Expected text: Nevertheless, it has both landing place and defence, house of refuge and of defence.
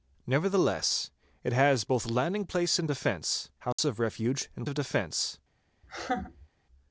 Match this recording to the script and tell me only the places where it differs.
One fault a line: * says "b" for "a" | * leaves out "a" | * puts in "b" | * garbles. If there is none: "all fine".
all fine